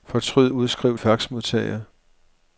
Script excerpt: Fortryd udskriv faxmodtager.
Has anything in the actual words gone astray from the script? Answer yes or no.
no